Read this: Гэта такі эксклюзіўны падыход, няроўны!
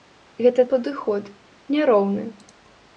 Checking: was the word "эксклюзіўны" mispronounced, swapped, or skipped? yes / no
yes